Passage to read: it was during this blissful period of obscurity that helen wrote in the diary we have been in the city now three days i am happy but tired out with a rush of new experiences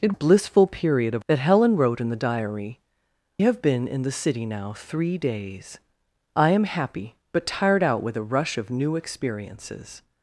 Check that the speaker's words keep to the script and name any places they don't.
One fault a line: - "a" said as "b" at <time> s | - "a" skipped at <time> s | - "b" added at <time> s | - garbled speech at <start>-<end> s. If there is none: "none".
- "was during this" skipped at 0.1 s
- "obscurity" skipped at 1.2 s
- "we" skipped at 2.8 s